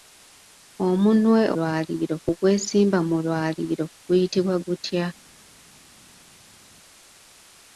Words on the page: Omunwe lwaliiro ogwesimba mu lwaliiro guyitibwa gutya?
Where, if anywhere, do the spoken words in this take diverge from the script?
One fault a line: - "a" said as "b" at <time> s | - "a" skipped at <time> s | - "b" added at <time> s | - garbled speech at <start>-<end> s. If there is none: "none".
none